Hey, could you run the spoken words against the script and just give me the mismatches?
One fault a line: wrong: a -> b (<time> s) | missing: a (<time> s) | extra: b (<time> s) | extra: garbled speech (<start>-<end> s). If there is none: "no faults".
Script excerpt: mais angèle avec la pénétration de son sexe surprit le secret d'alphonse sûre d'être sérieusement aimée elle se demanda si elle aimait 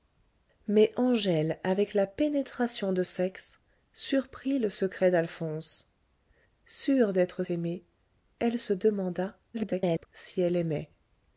missing: son (3.0 s)
missing: sérieusement (7.4 s)
extra: garbled speech (9.5-10.1 s)